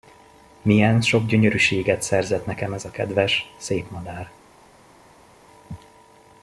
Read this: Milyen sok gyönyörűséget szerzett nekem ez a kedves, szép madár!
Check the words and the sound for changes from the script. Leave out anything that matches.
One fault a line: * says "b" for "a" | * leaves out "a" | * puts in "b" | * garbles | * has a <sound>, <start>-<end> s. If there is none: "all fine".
all fine